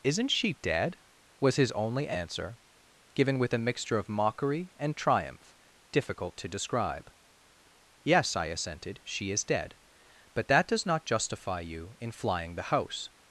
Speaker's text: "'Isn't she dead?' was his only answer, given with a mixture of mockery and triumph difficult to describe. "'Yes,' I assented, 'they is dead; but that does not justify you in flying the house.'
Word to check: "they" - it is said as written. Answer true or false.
false